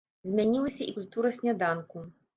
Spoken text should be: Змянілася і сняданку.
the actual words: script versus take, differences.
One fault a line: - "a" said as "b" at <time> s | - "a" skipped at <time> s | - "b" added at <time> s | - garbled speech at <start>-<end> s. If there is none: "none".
- "культура" added at 1.0 s